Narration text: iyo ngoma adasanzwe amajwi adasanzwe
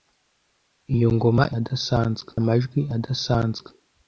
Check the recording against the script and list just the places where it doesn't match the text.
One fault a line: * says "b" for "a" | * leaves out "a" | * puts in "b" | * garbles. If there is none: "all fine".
all fine